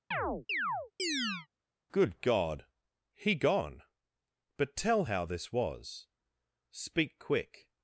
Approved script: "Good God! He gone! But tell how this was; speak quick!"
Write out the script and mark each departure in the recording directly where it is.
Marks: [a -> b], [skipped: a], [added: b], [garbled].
"Good God! He gone! But tell how this was; speak quick!"